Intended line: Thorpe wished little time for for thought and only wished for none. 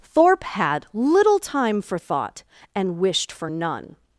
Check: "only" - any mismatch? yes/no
yes